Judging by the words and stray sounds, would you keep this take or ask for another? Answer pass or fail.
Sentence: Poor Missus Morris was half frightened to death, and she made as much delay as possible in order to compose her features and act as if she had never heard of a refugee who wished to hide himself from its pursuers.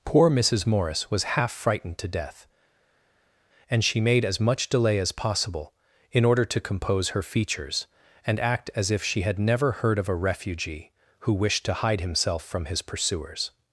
fail